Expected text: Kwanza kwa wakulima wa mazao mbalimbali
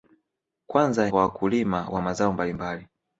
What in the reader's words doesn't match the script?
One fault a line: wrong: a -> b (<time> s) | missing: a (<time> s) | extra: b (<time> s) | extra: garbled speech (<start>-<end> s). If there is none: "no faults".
no faults